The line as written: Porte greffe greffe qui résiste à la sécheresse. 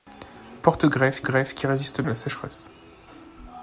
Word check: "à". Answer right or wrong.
right